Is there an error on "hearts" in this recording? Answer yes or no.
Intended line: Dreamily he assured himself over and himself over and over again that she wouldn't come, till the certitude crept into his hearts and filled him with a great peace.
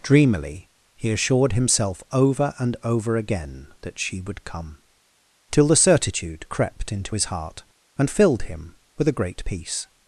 yes